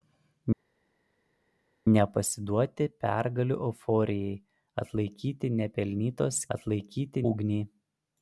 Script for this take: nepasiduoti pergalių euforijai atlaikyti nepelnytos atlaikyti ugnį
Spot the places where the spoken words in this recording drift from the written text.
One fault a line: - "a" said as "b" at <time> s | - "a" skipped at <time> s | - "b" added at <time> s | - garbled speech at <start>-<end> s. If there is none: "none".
none